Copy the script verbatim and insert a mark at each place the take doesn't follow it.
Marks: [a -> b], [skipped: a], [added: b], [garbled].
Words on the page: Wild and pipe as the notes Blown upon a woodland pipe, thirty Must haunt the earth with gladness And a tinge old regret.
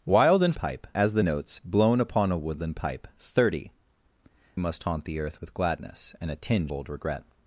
Wild and pipe as the notes Blown upon a woodland pipe, thirty Must haunt the earth with gladness And a tinge old regret.